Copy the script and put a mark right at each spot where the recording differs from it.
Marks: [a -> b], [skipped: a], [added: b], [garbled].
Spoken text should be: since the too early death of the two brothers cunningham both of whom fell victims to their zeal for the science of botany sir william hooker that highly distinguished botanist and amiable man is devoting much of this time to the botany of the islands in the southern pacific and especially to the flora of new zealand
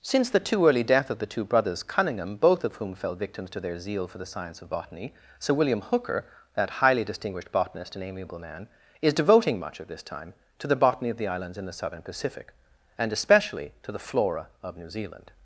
since the too early death of the two brothers cunningham both of whom fell victims to their zeal for the science of botany sir william hooker that highly distinguished botanist and amiable man is devoting much of this time to the botany of the islands in the southern pacific and especially to the flora of new zealand